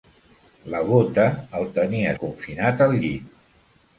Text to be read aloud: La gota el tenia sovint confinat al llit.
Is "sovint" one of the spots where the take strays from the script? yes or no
yes